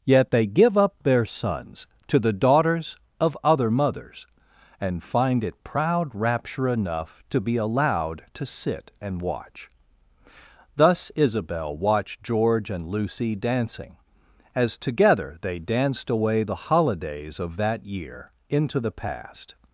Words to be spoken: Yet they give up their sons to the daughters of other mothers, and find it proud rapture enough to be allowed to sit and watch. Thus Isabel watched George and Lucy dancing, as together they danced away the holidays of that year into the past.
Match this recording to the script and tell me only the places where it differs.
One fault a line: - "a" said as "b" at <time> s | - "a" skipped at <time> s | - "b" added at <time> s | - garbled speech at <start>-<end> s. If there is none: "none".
none